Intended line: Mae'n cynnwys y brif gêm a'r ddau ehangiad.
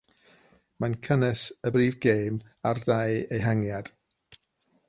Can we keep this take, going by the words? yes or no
yes